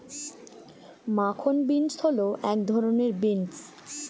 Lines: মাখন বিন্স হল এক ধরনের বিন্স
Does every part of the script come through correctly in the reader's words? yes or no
yes